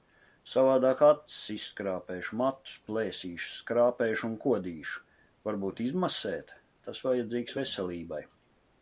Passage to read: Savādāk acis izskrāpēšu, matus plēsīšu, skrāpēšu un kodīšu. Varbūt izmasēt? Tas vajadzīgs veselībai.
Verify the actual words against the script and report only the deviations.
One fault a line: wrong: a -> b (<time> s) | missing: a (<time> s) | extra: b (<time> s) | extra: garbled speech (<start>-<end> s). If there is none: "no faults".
no faults